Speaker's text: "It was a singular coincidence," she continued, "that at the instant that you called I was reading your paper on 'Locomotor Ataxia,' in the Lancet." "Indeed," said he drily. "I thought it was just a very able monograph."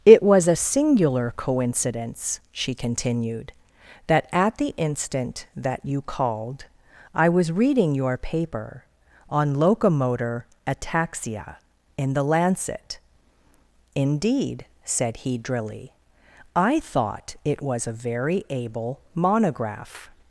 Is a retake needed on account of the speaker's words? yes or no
yes